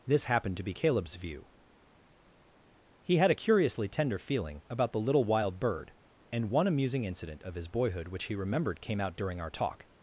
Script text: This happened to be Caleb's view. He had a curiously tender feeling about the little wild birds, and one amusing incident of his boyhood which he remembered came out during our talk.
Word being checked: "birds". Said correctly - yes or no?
no